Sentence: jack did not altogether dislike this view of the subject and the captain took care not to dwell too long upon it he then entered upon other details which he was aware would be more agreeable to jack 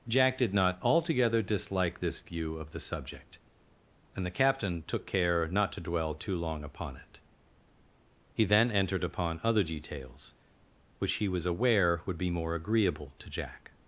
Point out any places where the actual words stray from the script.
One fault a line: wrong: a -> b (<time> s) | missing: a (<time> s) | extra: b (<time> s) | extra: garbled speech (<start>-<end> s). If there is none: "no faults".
no faults